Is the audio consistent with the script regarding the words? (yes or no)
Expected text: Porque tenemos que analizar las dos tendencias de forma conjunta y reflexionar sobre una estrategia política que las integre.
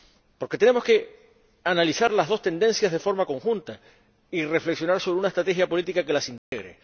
yes